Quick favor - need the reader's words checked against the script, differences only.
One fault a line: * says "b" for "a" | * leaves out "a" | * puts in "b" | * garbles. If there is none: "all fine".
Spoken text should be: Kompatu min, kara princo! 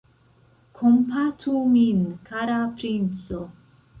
all fine